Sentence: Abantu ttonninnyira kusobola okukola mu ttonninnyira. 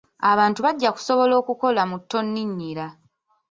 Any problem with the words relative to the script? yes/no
yes